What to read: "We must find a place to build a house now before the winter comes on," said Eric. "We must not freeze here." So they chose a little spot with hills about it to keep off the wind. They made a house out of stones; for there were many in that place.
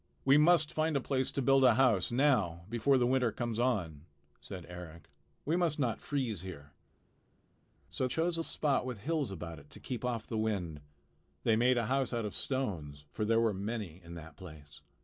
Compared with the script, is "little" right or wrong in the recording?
wrong